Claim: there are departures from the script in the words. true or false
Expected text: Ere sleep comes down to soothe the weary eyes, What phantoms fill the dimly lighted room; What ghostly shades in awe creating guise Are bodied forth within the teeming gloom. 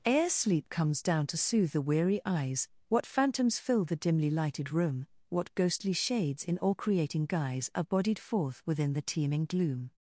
true